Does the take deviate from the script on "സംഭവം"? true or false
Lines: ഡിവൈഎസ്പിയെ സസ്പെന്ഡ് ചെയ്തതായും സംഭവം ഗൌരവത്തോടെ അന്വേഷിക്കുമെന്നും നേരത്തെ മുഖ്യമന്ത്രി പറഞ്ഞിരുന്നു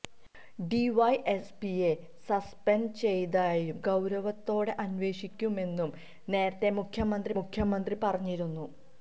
true